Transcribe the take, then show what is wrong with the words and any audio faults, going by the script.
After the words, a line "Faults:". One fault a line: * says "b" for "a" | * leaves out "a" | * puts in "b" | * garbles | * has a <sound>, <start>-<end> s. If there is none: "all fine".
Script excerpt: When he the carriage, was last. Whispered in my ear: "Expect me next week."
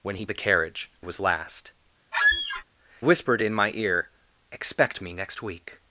When he the carriage, was last. Whispered in my ear: "Expect me next week."
Faults:
* has a squeak, 2.1-2.6 s